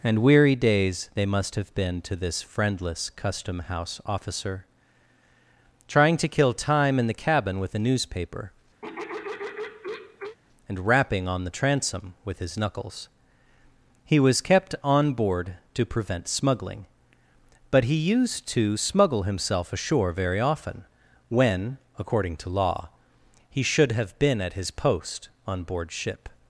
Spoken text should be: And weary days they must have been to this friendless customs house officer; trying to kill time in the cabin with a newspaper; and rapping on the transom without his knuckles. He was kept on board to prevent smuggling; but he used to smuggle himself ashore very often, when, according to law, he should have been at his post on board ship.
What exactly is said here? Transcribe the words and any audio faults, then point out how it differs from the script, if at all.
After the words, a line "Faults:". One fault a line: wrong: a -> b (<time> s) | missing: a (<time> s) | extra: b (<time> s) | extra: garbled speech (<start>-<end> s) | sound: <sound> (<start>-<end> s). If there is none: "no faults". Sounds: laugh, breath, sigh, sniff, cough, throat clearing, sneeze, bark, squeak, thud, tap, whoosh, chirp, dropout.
And weary days they must have been to this friendless custom house officer; trying to kill time in the cabin with a newspaper; and rapping on the transom with his knuckles. He was kept on board to prevent smuggling; but he used to smuggle himself ashore very often, when, according to law, he should have been at his post on board ship.
Faults:
wrong: customs -> custom (3.1 s)
sound: throat clearing (8.8-10.4 s)
wrong: without -> with (12.2 s)